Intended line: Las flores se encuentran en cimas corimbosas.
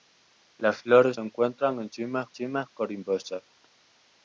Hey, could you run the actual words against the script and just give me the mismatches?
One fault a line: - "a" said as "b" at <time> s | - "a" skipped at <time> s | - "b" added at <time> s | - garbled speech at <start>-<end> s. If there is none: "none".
- "se" skipped at 1.2 s
- "cimas" added at 2.3 s